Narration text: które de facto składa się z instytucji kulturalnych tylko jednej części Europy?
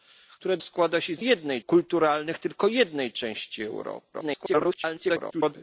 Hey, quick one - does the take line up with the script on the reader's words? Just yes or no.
no